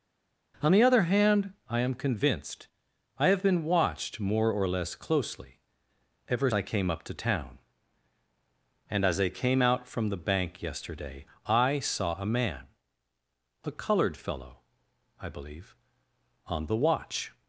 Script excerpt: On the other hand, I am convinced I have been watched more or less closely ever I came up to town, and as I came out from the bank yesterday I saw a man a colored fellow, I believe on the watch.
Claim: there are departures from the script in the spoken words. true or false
false